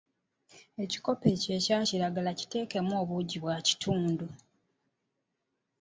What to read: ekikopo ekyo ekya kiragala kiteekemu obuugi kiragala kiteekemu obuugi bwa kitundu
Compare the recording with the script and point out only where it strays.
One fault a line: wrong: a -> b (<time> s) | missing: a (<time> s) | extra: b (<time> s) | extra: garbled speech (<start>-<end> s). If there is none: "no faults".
missing: kiragala kiteekemu obuugi (3.4 s)